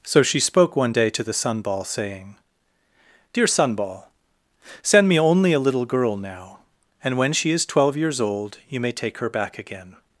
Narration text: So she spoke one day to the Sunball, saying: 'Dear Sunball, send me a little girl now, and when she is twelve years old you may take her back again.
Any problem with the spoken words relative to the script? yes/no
yes